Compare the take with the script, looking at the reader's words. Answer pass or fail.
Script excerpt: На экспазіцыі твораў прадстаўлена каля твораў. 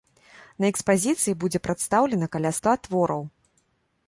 fail